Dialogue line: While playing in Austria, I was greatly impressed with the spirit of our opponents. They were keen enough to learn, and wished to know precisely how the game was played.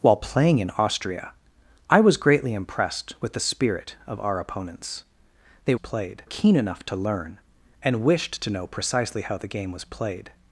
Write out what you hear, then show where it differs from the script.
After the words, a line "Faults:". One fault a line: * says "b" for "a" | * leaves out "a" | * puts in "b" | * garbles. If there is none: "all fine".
While playing in Austria, I was greatly impressed with the spirit of our opponents. They played keen enough to learn, and wished to know precisely how the game was played.
Faults:
* says "played" for "were"